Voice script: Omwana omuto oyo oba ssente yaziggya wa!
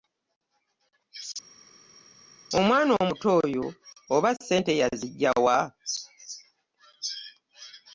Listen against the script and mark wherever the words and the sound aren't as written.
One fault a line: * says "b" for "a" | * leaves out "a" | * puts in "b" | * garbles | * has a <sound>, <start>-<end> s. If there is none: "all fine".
all fine